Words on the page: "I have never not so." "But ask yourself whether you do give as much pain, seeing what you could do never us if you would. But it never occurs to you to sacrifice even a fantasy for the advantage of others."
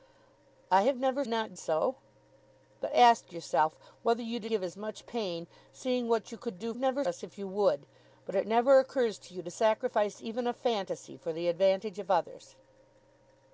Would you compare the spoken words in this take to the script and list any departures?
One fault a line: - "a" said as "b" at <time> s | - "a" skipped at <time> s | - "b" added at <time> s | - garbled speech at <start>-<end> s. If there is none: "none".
none